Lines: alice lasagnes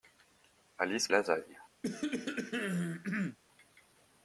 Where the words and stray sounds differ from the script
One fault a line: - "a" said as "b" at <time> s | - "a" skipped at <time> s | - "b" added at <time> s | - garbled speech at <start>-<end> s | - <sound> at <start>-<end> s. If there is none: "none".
- cough at 1.8-3.4 s